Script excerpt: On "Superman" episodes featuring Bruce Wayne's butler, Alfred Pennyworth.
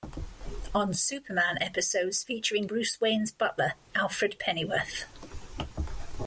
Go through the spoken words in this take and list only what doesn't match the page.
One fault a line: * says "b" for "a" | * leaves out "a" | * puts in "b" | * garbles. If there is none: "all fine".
all fine